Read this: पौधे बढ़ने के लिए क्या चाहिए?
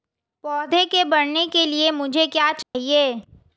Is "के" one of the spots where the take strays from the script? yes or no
no